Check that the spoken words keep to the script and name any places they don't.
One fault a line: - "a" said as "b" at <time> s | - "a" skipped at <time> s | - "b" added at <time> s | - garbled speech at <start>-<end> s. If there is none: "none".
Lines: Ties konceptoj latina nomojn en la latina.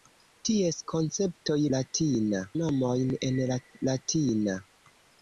none